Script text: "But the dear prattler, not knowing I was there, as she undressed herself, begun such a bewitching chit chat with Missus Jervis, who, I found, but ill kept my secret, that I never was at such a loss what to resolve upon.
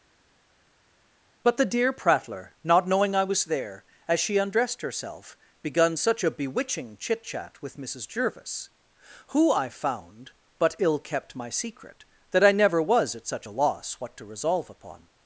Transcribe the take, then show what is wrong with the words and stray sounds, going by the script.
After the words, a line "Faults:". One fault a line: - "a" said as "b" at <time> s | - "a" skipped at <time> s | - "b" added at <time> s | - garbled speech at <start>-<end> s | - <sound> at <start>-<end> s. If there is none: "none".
"But the dear prattler, not knowing I was there, as she undressed herself, begun such a bewitching chit chat with Missus Jervis, who, I found, but ill kept my secret, that I never was at such a loss what to resolve upon.
Faults:
none